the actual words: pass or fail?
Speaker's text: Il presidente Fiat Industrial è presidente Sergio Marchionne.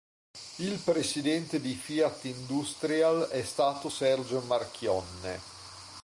fail